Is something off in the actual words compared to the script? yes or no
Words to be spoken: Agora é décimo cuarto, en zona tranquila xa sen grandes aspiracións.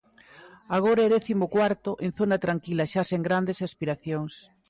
no